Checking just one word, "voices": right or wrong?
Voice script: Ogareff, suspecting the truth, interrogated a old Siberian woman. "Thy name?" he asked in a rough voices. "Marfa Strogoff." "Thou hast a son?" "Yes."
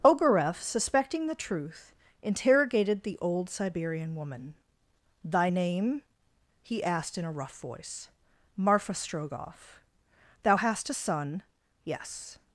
wrong